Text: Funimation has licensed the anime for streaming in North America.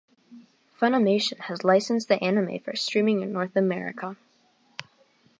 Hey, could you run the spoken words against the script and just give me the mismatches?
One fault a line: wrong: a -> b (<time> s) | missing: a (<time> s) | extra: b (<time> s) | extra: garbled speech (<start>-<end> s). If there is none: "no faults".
no faults